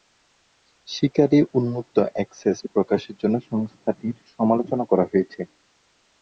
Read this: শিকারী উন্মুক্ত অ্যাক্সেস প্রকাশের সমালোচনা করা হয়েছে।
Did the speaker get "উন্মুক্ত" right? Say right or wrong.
right